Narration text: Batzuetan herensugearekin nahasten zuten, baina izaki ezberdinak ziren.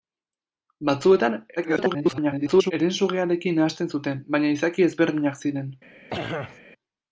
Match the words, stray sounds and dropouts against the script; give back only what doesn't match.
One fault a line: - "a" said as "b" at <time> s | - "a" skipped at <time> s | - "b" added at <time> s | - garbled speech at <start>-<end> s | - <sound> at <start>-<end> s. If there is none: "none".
- garbled speech at 1.6-2.7 s
- throat clearing at 6.1-6.6 s